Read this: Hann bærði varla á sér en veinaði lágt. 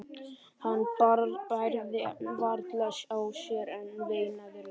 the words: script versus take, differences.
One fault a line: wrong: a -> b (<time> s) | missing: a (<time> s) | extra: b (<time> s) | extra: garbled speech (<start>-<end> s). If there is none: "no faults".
no faults